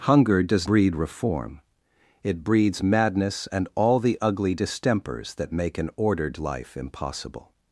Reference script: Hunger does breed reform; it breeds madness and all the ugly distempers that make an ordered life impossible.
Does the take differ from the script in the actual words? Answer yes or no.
no